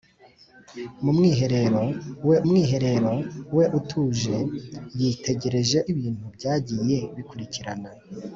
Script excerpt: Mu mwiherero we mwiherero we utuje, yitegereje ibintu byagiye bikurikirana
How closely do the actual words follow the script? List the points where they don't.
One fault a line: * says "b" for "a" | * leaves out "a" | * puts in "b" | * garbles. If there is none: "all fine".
all fine